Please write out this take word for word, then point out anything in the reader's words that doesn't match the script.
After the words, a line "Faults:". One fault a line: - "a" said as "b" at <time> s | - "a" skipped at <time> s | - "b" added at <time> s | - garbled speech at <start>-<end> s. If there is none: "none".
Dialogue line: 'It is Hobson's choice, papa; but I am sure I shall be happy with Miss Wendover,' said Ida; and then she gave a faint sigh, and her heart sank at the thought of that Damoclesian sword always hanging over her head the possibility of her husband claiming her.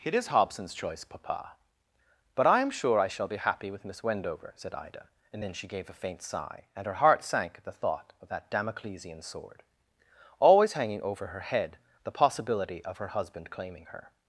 'It is Hobson's choice, papa; but I am sure I shall be happy with Miss Wendover,' said Ida; and then she gave a faint sigh, and her heart sank at the thought of that Damoclesian sword always hanging over her head the possibility of her husband claiming her.
Faults:
none